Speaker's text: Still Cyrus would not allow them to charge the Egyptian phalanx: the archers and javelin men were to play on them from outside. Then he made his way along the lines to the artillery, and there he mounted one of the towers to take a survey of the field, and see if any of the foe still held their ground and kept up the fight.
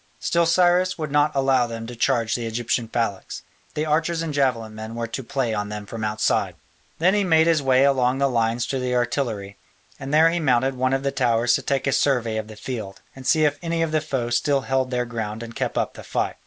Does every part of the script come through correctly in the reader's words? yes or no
yes